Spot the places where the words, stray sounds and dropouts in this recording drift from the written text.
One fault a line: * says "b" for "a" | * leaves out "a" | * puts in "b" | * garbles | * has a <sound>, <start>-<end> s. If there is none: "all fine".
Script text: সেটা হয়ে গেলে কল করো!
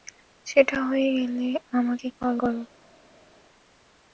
* puts in "আমাকে"